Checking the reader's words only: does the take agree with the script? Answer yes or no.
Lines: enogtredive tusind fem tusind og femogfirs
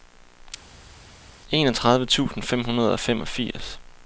no